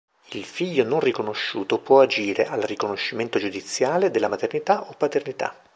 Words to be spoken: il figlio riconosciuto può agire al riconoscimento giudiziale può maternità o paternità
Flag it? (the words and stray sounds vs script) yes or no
yes